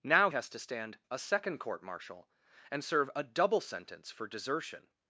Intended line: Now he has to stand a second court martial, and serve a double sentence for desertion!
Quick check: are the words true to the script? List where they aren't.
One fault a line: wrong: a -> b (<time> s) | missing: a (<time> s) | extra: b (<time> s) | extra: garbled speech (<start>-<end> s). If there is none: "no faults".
missing: he (0.3 s)